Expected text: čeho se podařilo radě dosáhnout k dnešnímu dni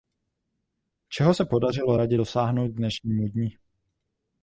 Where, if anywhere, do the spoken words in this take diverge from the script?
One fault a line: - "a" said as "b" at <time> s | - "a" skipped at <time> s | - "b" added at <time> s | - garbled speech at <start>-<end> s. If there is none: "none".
none